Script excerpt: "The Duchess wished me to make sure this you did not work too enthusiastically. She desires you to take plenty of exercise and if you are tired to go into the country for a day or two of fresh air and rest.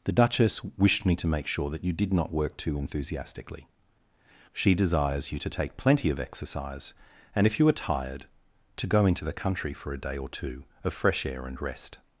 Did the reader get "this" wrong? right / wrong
wrong